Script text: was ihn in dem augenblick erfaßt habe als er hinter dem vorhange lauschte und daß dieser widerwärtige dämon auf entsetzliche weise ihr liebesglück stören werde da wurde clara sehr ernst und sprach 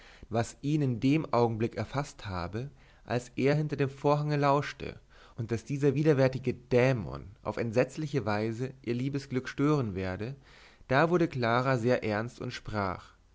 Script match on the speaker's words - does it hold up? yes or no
yes